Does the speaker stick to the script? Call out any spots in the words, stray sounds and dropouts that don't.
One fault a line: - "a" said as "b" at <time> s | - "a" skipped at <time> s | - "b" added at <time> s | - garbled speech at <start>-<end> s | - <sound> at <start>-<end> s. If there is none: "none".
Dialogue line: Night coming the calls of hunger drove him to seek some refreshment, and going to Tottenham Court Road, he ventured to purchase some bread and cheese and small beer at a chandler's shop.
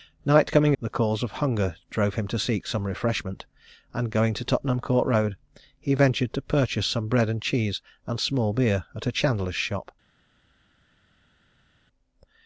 none